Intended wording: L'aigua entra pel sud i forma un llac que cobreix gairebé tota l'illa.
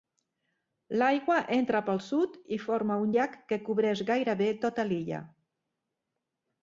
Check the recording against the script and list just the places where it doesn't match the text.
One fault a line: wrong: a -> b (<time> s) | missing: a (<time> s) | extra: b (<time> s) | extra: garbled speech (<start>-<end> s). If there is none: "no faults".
no faults